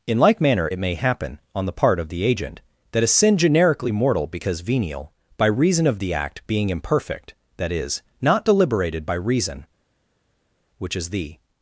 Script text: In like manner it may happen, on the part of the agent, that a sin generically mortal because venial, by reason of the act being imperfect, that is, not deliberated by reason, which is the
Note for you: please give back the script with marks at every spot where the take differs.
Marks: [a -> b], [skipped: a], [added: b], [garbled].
In like manner it may happen, on the part of the agent, that a sin generically mortal because venial, by reason of the act being imperfect, that is, not deliberated by reason, which is the